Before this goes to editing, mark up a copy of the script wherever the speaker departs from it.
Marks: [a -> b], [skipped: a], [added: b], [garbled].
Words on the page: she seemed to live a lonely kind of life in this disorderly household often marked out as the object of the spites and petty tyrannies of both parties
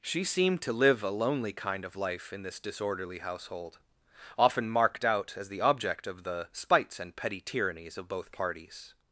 she seemed to live a lonely kind of life in this disorderly household often marked out as the object of the spites and petty tyrannies of both parties